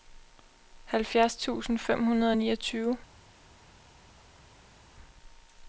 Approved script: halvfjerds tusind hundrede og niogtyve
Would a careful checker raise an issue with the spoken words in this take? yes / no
yes